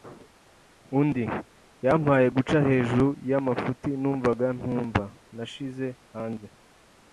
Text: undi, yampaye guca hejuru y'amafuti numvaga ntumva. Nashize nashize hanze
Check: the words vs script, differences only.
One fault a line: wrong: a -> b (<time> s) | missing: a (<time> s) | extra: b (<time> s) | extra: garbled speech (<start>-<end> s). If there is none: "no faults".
missing: nashize (5.9 s)